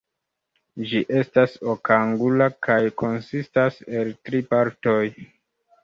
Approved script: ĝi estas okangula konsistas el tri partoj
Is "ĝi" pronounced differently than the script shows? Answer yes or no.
no